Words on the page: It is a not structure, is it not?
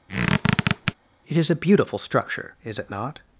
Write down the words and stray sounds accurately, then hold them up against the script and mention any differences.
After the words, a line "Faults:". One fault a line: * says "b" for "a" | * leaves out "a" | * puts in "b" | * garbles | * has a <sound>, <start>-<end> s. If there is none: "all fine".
It is a beautiful structure, is it not?
Faults:
* has a squeak, 0.1-0.9 s
* says "beautiful" for "not"